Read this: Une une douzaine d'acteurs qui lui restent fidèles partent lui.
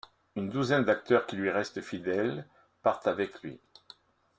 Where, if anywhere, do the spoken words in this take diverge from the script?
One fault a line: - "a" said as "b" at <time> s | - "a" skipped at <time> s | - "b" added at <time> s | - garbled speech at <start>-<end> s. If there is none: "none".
- "une" skipped at 0.5 s
- "avec" added at 3.0 s